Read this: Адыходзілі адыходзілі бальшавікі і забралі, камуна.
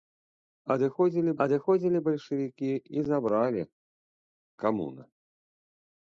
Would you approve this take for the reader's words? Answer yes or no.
yes